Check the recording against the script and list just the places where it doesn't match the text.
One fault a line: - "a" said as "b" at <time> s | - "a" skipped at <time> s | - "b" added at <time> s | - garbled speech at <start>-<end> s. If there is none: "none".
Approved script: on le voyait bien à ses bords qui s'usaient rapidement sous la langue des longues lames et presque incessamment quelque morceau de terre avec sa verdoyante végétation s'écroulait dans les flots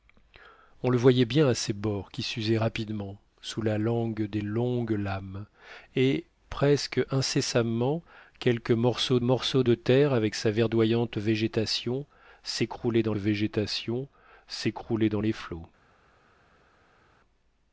- "morceau" added at 9.2 s
- "végétation s'écroulait dans" added at 13.1 s